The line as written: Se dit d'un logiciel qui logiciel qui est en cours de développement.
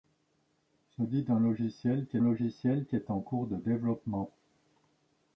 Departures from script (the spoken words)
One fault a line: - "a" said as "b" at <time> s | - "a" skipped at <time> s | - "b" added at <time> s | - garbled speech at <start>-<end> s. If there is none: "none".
none